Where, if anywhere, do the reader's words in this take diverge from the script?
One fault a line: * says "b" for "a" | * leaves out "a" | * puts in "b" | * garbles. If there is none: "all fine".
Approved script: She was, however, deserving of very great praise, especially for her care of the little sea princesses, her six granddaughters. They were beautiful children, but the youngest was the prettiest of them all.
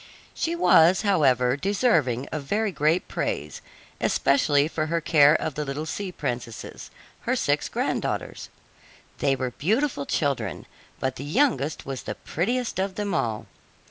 all fine